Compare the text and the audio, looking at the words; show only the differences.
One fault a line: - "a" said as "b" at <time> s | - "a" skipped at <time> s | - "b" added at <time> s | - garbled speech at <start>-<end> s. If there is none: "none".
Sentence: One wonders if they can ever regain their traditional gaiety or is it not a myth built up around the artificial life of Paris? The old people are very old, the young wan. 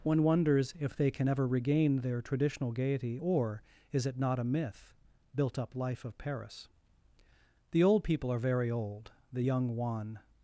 - "around the artificial" skipped at 5.7 s